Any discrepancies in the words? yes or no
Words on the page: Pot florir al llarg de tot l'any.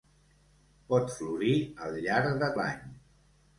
yes